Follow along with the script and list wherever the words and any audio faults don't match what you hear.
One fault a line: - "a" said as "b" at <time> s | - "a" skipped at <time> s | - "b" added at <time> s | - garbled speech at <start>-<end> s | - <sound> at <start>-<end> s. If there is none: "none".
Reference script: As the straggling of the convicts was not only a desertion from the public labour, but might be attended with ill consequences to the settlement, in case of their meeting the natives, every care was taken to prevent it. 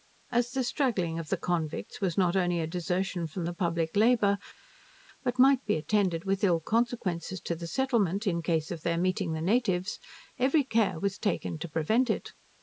none